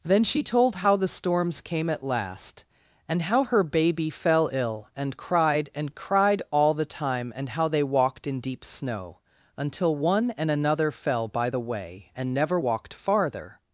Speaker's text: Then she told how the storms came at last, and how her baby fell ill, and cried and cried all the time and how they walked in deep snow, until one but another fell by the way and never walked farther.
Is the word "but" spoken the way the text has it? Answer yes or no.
no